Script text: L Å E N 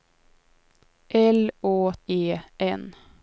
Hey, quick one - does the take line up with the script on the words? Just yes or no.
yes